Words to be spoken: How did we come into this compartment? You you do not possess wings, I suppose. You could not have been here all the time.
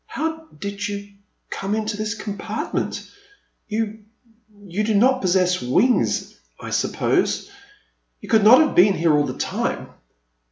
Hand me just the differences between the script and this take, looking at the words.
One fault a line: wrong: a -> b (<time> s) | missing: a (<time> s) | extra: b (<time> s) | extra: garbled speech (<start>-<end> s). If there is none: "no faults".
wrong: we -> you (0.9 s)